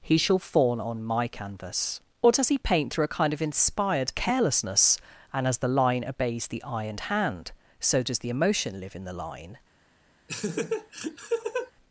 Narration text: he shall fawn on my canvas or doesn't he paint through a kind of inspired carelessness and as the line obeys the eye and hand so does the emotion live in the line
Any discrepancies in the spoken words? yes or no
yes